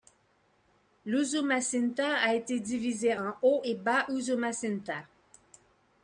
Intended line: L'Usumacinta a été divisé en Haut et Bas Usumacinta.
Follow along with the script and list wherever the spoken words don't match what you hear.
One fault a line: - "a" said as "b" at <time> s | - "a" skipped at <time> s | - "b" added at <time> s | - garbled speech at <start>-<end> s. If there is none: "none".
none